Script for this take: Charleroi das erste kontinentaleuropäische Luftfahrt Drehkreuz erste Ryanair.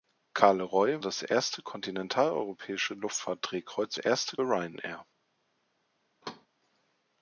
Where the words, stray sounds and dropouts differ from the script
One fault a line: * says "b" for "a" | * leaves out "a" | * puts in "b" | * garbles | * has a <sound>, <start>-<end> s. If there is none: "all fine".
* has a thud, 6.2-6.5 s